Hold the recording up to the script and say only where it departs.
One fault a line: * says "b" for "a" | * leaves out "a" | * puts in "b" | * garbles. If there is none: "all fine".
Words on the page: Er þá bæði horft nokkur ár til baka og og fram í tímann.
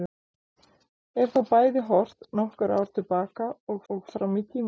all fine